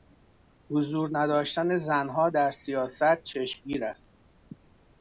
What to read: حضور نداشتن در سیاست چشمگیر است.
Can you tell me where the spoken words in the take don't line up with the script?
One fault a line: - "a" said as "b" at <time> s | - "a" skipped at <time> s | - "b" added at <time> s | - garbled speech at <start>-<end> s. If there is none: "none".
- "زنها" added at 1.8 s